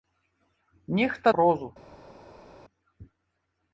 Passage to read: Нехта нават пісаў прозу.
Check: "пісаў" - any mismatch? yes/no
yes